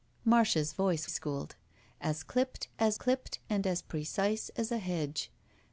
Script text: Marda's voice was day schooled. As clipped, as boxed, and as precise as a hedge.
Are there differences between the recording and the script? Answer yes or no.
yes